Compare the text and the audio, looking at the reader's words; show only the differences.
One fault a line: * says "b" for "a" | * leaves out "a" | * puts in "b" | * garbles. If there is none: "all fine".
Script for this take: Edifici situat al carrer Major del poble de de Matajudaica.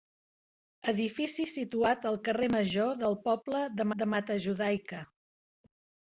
all fine